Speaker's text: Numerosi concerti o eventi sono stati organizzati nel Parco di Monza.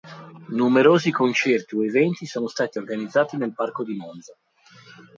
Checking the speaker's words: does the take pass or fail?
pass